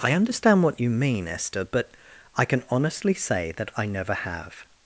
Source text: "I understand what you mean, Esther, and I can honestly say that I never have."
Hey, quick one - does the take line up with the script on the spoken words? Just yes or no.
no